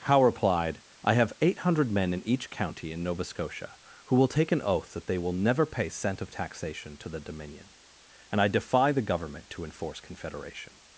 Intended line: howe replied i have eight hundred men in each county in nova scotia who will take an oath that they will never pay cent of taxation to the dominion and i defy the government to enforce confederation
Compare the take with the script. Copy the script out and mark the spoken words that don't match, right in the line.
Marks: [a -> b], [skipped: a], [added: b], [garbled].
howe replied i have eight hundred men in each county in nova scotia who will take an oath that they will never pay cent of taxation to the dominion and i defy the government to enforce confederation